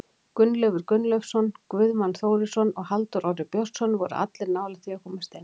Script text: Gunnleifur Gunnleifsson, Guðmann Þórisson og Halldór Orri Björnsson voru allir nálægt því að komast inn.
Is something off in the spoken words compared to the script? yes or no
no